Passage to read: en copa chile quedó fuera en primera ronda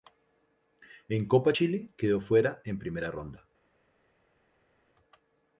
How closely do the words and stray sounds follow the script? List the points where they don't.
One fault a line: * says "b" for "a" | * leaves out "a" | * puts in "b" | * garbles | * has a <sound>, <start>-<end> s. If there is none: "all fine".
all fine